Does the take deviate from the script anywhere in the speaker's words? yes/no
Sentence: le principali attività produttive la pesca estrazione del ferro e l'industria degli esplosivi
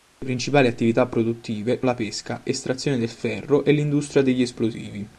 no